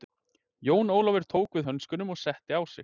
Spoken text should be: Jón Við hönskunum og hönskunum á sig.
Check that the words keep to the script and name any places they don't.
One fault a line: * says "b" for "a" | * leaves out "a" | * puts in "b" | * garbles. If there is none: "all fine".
* puts in "Ólafur tók"
* says "setti" for "hönskunum"